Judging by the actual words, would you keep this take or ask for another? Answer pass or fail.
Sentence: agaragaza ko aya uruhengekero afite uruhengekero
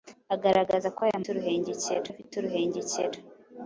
pass